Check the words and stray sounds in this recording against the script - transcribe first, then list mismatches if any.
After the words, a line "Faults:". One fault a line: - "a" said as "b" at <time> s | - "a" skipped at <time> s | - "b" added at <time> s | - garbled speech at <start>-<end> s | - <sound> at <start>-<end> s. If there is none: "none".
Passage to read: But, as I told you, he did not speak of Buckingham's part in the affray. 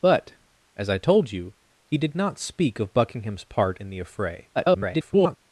But, as I told you, he did not speak of Buckingham's part in the affray. [garbled]
Faults:
- garbled speech at 4.6-5.4 s